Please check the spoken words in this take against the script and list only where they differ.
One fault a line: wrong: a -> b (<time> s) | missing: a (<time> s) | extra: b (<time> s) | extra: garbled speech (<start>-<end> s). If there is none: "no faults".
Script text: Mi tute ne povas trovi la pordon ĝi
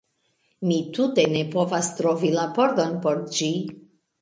extra: por (3.1 s)